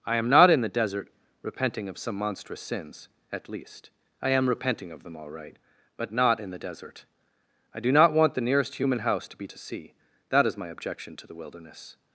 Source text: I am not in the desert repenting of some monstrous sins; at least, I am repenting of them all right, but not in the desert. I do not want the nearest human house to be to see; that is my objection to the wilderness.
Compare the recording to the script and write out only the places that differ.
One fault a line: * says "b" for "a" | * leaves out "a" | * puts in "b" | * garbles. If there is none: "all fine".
all fine